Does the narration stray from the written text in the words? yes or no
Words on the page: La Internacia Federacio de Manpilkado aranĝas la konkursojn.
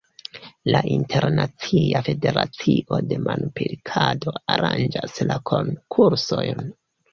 no